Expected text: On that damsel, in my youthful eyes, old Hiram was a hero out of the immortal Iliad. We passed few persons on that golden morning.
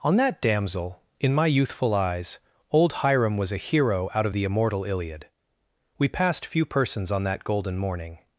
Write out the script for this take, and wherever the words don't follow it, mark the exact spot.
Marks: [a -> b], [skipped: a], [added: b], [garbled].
On that damsel, in my youthful eyes, old Hiram was a hero out of the immortal Iliad. We passed few persons on that golden morning.